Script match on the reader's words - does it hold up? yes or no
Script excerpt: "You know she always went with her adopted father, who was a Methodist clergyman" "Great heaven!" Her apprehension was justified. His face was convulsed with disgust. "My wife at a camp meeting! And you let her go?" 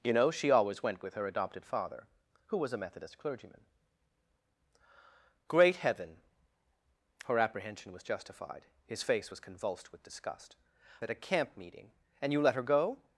no